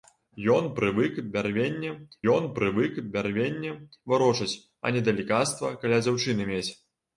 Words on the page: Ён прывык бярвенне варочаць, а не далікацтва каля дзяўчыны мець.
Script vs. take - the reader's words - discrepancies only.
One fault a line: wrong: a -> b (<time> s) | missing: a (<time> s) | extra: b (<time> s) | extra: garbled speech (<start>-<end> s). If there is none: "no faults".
extra: ён прывык бярвенне (2.3 s)